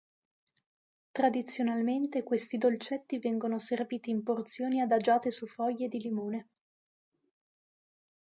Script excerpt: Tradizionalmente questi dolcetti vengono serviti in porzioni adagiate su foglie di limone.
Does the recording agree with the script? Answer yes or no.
yes